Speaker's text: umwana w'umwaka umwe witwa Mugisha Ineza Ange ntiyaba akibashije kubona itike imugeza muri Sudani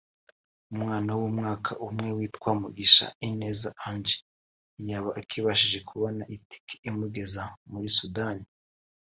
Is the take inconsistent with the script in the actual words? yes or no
no